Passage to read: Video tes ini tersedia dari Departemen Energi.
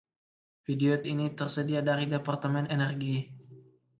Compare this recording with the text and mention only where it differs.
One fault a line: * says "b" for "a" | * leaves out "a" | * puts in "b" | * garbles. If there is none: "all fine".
* leaves out "tes"